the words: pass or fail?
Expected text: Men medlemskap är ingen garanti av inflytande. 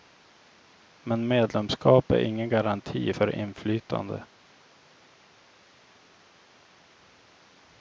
fail